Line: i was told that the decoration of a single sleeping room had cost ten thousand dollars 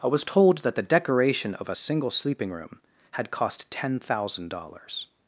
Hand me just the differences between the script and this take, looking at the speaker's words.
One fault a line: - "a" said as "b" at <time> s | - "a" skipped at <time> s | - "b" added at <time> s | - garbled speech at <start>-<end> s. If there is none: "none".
none